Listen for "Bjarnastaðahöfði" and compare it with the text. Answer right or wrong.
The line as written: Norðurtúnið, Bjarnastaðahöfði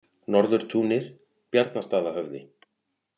right